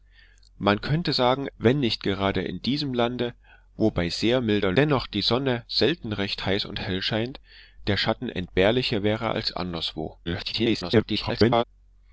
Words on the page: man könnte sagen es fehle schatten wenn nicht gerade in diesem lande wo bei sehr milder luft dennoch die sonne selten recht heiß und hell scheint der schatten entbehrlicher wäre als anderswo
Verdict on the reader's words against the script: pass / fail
fail